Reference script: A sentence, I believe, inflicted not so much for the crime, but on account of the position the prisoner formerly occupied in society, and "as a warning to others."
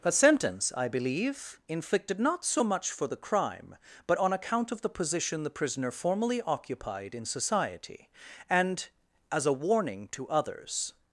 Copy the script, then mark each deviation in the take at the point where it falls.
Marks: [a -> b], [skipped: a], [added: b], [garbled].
A sentence, I believe, inflicted not so much for the crime, but on account of the position the prisoner formerly occupied in society, and "as a warning to others."